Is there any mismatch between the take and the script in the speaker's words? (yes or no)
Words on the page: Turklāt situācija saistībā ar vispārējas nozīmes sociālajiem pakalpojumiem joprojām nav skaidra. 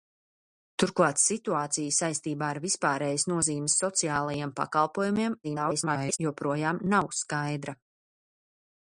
yes